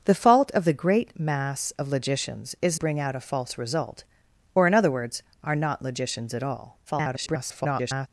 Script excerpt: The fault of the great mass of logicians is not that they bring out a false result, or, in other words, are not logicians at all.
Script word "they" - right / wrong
wrong